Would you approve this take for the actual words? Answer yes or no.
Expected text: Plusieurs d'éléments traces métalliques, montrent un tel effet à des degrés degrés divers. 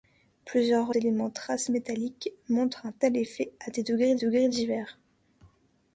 yes